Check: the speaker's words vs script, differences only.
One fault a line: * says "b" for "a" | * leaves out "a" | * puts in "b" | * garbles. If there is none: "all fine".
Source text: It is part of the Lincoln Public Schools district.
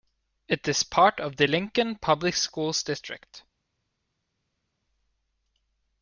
all fine